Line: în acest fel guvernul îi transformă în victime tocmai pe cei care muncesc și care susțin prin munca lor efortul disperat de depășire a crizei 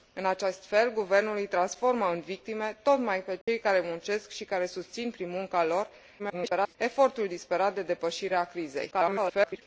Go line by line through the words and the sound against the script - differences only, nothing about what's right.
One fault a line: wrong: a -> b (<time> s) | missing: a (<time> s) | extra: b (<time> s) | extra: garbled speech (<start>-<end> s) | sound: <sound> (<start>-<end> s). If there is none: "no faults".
sound: dropout (3.4-3.5 s)
extra: garbled speech (6.2-6.8 s)
extra: garbled speech (8.9-9.6 s)